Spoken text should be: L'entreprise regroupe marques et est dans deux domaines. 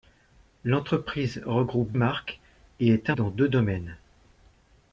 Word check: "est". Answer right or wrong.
right